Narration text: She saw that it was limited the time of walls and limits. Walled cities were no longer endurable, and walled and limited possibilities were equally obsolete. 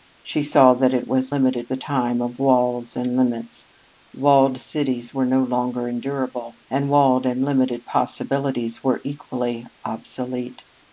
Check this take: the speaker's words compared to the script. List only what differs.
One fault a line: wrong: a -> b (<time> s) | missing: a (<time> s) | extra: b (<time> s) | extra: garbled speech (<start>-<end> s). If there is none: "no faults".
no faults